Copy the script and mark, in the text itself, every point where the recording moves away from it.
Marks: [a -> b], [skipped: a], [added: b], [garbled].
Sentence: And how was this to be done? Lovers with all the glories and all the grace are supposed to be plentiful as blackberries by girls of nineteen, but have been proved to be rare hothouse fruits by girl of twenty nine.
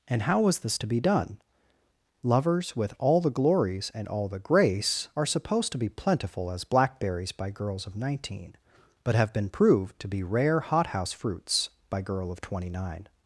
And how was this to be done? Lovers with all the glories and all the grace are supposed to be plentiful as blackberries by girls of nineteen, but have been proved to be rare hothouse fruits by girl of twenty nine.